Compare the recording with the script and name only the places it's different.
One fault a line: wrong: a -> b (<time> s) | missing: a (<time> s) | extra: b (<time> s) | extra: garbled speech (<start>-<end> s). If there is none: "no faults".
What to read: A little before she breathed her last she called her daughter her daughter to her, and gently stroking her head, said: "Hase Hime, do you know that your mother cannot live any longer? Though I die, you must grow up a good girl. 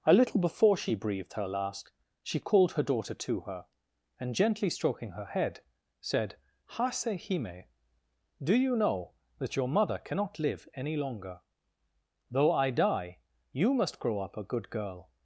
missing: her daughter (3.1 s)